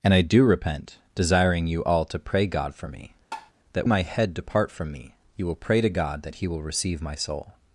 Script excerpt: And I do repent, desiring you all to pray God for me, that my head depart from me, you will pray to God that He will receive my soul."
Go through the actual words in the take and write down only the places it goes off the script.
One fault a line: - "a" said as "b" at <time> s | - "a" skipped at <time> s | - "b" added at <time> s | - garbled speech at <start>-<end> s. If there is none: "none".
none